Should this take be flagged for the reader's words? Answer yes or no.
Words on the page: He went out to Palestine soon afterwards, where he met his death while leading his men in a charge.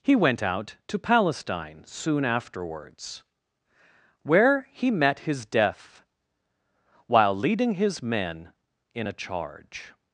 no